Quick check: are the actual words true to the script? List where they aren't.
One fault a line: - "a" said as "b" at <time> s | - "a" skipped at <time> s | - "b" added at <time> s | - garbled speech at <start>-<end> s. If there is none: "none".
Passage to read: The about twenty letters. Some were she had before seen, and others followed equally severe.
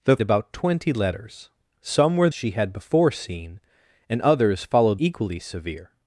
none